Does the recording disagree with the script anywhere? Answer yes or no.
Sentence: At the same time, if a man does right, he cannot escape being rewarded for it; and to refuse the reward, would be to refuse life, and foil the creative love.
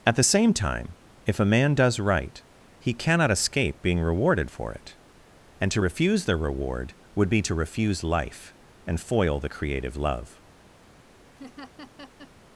no